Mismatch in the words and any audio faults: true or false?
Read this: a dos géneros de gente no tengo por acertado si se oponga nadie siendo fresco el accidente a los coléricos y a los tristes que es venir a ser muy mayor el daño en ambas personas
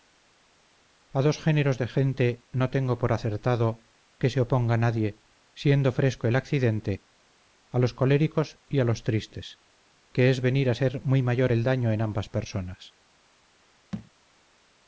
true